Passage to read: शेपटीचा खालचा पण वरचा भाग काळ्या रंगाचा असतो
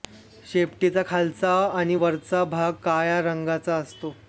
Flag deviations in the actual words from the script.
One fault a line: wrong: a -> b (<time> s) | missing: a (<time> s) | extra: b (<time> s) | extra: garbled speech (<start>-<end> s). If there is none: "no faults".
wrong: पण -> आणि (1.7 s)